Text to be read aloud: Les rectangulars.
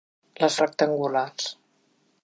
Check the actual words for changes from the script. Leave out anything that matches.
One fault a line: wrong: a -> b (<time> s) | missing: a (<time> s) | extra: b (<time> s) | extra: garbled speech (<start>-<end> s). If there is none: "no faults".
no faults